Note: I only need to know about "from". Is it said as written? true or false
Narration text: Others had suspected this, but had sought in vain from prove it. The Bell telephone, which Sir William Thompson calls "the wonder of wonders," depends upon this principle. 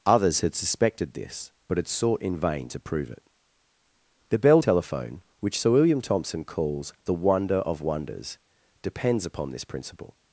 false